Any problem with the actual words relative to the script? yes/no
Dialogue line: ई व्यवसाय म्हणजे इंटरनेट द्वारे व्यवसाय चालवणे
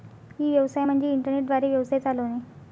no